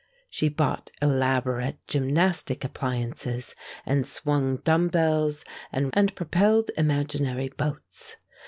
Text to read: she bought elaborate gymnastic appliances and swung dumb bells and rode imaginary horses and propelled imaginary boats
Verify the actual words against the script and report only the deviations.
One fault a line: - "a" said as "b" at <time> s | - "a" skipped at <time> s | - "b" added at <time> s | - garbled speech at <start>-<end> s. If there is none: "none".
- "rode imaginary horses" skipped at 5.9 s